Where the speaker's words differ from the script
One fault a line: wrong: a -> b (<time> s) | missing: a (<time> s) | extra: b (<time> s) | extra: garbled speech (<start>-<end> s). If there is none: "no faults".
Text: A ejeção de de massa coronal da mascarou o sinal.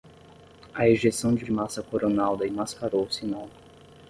no faults